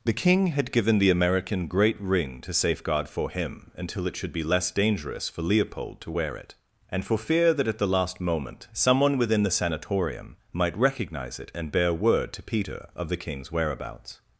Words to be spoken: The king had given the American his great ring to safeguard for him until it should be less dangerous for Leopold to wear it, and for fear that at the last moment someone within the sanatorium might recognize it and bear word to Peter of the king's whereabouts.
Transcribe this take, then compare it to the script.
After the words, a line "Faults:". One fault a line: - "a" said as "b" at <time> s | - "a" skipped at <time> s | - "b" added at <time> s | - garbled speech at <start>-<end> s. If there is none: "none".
The king had given the American great ring to safeguard for him until it should be less dangerous for Leopold to wear it, and for fear that at the last moment someone within the sanatorium might recognize it and bear word to Peter of the king's whereabouts.
Faults:
- "his" skipped at 1.7 s